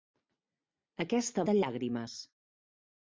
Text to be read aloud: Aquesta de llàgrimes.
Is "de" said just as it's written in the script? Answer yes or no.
yes